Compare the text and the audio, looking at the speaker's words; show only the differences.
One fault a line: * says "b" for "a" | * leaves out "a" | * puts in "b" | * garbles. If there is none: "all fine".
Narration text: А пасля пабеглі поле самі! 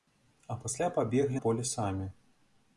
all fine